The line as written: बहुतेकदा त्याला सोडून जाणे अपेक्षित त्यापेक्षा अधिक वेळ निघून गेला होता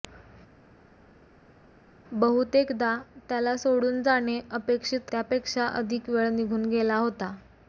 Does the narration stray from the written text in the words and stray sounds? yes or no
no